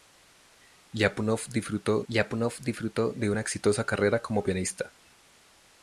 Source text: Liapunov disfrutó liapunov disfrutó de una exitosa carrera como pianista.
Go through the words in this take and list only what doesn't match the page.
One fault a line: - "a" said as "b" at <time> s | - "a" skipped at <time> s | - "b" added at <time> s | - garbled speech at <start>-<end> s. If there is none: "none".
none